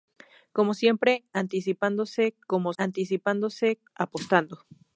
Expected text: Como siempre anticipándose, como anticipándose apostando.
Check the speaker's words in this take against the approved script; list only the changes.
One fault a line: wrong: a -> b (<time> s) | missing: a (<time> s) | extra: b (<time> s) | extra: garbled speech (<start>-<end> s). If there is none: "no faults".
no faults